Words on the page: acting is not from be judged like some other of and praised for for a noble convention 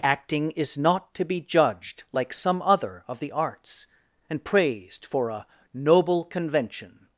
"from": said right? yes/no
no